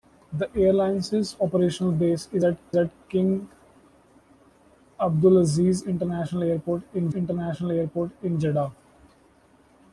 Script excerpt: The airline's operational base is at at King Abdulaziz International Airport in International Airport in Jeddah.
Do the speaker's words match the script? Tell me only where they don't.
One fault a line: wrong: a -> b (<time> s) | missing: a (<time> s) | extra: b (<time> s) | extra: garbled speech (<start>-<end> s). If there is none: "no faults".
no faults